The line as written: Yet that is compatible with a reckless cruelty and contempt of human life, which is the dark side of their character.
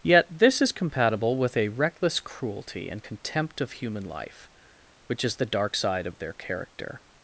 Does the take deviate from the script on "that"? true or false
true